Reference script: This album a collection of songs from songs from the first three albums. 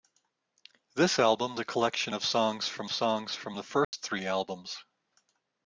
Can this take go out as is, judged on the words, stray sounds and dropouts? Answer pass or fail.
fail